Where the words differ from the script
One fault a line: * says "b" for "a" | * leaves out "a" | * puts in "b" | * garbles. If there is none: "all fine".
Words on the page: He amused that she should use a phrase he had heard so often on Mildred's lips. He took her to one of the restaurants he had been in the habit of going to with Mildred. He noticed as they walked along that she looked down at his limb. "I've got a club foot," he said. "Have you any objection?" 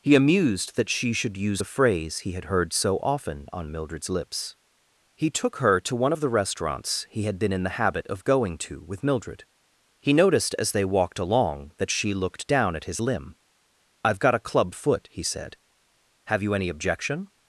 all fine